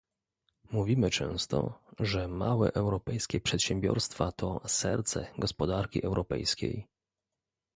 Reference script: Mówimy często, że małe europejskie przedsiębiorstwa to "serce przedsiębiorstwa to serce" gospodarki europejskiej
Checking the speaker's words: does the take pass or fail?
fail